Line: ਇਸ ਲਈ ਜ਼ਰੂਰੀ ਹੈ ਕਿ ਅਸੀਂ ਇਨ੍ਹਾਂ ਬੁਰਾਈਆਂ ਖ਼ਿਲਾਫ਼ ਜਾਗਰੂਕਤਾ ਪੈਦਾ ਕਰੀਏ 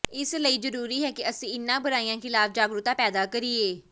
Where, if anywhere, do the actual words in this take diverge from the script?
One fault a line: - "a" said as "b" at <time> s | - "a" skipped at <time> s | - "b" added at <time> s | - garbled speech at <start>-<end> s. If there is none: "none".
none